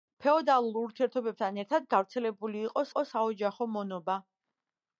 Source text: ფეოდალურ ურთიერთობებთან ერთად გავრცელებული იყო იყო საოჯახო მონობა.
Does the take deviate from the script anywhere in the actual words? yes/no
no